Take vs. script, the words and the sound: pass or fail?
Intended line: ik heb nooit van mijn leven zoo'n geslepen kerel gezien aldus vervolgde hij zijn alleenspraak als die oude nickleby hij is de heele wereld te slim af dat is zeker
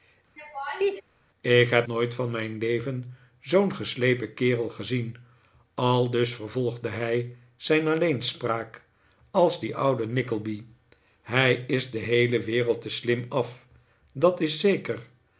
fail